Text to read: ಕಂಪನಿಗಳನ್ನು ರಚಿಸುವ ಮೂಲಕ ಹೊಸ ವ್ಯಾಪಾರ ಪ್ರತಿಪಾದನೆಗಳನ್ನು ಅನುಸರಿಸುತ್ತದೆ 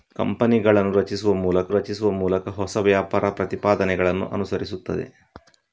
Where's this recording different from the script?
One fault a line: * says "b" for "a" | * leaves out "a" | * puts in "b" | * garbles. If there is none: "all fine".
* puts in "ರಚಿಸುವ ಮೂಲಕ"